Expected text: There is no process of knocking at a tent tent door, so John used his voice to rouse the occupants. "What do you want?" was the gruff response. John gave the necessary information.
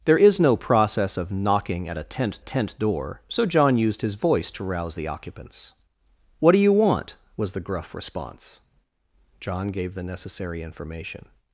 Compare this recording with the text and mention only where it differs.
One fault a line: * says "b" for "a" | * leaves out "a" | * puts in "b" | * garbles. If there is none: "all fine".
all fine